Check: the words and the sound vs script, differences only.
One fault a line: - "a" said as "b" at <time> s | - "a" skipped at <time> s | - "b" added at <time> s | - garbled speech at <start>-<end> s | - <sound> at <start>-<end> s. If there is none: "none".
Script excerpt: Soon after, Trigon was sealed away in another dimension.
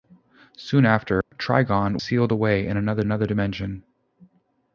- dropout at 1.2-1.3 s
- "was" skipped at 2.0 s
- "another" added at 3.0 s